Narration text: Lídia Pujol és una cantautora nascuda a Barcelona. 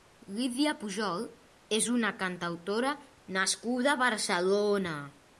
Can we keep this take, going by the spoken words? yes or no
yes